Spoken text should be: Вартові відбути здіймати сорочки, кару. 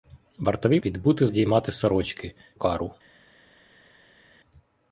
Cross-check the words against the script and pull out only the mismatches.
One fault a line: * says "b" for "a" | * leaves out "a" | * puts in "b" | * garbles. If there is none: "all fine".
all fine